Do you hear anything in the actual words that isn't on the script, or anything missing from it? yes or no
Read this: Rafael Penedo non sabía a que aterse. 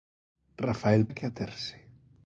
yes